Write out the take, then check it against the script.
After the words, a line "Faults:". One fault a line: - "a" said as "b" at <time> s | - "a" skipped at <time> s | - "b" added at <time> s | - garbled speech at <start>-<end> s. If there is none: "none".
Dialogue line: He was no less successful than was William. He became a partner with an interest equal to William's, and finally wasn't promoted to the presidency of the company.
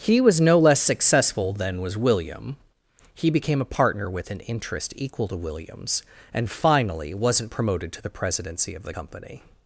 He was no less successful than was William. He became a partner with an interest equal to William's, and finally wasn't promoted to the presidency of the company.
Faults:
none